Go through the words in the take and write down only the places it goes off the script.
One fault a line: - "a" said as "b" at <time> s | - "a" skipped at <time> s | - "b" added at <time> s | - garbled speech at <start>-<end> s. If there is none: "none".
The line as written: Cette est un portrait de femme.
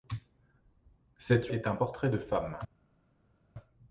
none